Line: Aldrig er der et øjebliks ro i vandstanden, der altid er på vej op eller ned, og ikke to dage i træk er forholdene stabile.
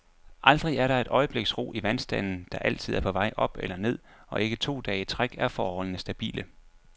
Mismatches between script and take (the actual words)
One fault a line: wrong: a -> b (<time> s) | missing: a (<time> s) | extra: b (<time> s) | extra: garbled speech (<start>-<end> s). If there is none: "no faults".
no faults